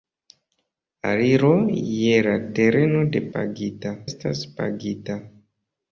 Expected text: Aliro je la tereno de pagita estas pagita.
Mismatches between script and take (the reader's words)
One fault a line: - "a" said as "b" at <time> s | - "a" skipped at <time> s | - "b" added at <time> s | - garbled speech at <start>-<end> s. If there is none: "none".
none